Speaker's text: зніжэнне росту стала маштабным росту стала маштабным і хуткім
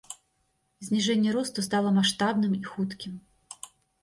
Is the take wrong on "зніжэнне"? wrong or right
right